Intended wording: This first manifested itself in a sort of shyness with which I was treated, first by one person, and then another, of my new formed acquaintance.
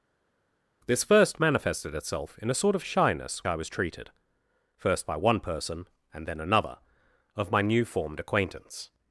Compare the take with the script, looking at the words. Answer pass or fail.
fail